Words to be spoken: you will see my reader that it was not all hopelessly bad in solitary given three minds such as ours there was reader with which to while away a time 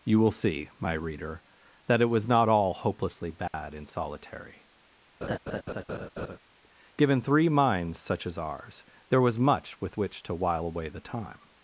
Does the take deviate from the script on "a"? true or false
true